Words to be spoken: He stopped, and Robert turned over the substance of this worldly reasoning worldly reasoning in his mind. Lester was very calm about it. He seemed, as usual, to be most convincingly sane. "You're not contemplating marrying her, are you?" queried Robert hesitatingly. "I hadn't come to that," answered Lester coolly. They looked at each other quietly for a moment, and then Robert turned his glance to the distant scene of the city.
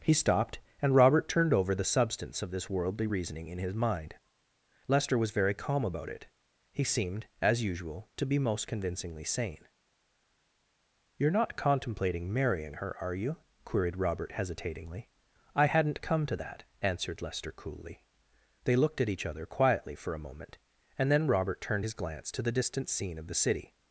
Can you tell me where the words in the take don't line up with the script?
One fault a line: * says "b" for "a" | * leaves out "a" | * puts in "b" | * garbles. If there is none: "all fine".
* leaves out "worldly reasoning"